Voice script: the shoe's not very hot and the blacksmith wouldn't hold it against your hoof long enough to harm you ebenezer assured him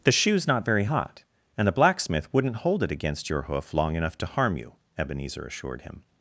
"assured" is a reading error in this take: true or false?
false